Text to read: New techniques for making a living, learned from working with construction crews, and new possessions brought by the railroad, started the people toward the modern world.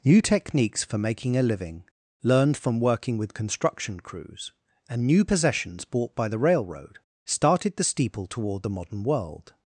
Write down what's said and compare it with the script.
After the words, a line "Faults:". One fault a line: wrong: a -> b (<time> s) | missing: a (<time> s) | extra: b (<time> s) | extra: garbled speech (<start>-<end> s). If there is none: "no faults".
New techniques for making a living, learned from working with construction crews, and new possessions bought by the railroad, started the steeple toward the modern world.
Faults:
wrong: brought -> bought (5.8 s)
wrong: people -> steeple (7.8 s)